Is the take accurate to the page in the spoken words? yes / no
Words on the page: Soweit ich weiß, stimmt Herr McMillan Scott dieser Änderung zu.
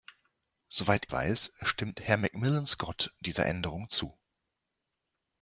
no